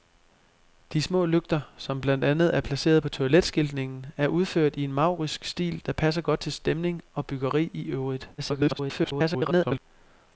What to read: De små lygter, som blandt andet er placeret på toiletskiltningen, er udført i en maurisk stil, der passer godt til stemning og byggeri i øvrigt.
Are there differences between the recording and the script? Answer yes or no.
yes